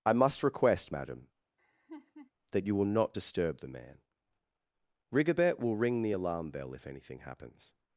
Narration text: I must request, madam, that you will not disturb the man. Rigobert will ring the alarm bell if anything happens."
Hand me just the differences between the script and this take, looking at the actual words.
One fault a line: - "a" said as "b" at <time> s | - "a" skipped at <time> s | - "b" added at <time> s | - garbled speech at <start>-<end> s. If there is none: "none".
none